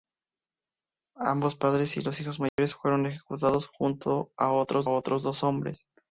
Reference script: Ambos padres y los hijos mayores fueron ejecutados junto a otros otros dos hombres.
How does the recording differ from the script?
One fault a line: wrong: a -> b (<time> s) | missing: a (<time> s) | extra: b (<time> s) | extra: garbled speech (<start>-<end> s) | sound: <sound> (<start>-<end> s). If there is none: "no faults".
sound: dropout (2.5-2.6 s)